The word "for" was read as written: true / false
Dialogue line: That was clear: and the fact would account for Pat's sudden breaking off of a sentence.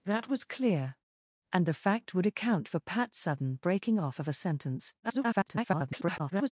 true